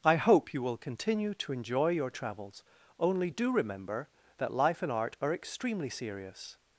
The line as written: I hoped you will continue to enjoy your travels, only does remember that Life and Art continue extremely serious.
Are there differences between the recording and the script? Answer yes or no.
yes